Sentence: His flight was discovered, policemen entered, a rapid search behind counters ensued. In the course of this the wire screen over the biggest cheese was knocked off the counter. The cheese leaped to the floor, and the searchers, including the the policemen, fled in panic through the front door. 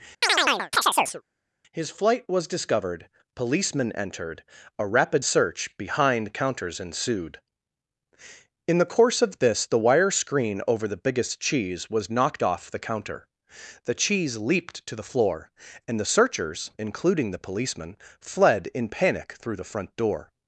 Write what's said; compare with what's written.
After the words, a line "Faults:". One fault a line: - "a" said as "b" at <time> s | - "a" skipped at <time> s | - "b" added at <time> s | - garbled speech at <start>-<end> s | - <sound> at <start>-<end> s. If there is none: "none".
His flight was discovered, policemen entered, a rapid search behind counters ensued. In the course of this the wire screen over the biggest cheese was knocked off the counter. The cheese leaped to the floor, and the searchers, including the policemen, fled in panic through the front door.
Faults:
- chirp at 0.2-1.2 s
- "the" skipped at 17.4 s